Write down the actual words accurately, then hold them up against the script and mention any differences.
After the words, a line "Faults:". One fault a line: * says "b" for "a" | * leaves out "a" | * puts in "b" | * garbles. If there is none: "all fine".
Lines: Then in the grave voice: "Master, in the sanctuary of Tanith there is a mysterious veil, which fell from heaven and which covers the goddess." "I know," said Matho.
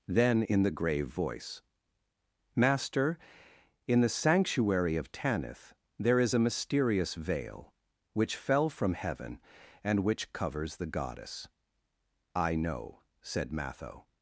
Then in the grave voice: "Master, in the sanctuary of Tanith there is a mysterious veil, which fell from heaven and which covers the goddess." "I know," said Matho.
Faults:
all fine